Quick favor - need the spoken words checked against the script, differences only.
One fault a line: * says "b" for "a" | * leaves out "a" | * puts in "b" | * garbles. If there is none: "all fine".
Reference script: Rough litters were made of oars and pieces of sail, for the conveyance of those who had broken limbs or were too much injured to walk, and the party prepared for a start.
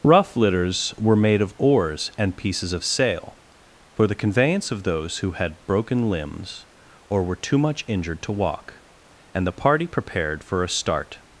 all fine